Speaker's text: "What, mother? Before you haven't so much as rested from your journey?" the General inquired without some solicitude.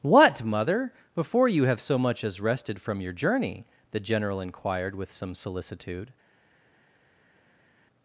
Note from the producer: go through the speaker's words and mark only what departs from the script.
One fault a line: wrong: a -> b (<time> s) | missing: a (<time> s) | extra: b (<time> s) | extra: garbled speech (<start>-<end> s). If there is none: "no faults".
wrong: haven't -> have (1.6 s)
wrong: without -> with (5.0 s)